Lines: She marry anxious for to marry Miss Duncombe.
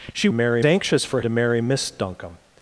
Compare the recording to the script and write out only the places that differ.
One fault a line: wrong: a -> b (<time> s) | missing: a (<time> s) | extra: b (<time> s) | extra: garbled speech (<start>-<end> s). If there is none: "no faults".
no faults